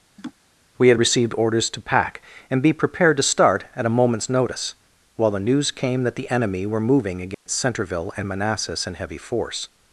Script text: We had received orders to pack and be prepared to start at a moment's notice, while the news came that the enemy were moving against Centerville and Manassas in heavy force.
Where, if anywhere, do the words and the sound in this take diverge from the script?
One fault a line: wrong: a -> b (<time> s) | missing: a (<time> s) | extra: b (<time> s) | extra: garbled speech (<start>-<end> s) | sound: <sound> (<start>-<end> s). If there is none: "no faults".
sound: laugh (0.2-0.3 s)
sound: dropout (7.3-7.5 s)